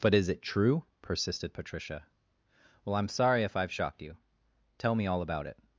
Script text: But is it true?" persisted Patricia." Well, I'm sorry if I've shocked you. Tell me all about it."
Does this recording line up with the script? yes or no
yes